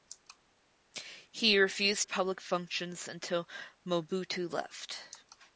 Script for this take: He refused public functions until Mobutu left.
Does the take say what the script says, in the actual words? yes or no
yes